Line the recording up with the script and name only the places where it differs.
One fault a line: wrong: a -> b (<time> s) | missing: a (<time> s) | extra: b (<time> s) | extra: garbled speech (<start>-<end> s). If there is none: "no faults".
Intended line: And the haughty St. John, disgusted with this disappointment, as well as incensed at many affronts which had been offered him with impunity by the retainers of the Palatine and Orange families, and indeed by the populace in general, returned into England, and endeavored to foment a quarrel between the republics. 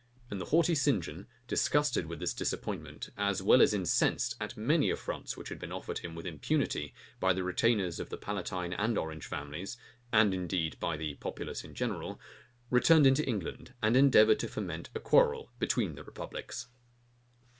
no faults